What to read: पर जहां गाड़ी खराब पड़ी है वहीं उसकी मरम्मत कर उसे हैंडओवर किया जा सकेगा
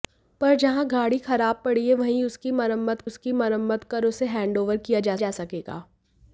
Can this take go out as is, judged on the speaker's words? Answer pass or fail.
fail